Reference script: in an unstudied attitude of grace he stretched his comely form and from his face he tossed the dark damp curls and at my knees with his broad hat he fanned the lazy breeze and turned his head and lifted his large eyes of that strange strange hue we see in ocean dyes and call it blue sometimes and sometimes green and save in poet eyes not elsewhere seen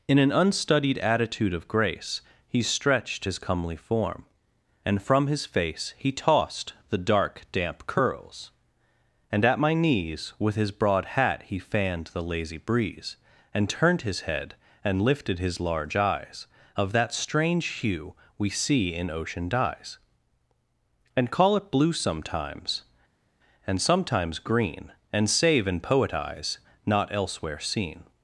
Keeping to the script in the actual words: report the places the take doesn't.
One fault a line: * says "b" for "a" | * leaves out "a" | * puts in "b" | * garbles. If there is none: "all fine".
* leaves out "strange"